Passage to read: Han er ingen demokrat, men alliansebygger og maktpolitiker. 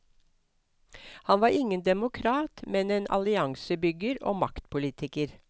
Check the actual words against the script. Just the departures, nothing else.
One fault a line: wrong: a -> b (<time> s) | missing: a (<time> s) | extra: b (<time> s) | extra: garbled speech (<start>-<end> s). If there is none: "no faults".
wrong: er -> var (1.4 s)
extra: en (2.9 s)